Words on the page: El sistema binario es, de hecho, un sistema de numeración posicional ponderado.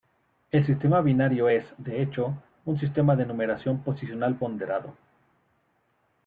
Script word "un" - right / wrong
right